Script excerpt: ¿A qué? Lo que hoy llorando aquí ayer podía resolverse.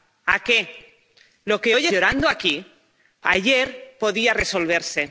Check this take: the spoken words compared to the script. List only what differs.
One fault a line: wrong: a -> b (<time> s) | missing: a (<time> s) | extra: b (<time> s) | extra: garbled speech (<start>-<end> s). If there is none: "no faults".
no faults